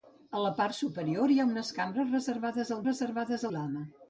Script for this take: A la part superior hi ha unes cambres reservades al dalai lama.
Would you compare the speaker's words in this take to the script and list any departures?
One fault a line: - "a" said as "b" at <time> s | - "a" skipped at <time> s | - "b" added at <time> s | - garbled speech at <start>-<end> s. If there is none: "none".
- "dalai" said as "reservades" at 2.9 s